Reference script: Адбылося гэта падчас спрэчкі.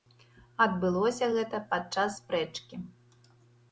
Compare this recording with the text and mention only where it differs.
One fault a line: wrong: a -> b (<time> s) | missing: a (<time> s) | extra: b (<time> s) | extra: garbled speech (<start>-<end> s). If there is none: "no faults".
no faults